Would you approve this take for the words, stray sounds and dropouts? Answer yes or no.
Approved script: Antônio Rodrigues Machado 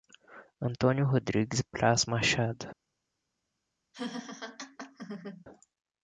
no